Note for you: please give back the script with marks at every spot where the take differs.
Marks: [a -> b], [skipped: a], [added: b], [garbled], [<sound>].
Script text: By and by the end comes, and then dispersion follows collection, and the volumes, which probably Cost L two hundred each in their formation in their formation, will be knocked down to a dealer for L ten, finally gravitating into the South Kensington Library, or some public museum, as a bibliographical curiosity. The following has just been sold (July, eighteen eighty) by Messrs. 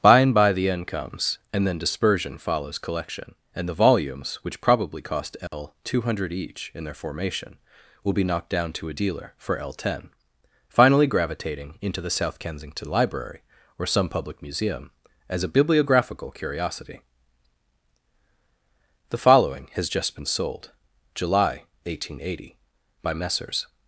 By and by the end comes, and then dispersion follows collection, and the volumes, which probably Cost L [dropout] two hundred each in their formation [skipped: in their formation,] will be knocked down to a dealer for L ten, finally gravitating into the South Kensington Library, or some public museum, as a bibliographical curiosity. The following has just been sold (July, eighteen eighty) by Messrs.